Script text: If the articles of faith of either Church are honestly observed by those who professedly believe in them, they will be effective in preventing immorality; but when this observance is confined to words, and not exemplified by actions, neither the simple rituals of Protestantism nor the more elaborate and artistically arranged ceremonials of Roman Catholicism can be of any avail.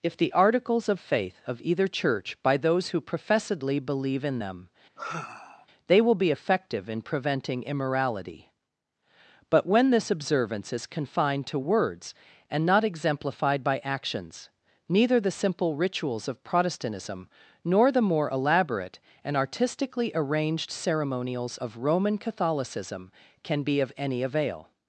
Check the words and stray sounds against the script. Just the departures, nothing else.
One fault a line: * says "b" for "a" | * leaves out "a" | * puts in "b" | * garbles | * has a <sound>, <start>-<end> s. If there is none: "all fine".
* leaves out "are honestly observed"
* has a sigh, 5.0-5.7 s